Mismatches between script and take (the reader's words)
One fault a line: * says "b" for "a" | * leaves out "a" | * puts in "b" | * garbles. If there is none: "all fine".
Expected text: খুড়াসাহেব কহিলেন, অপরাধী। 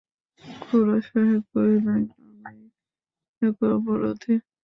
* puts in "আমিই একা"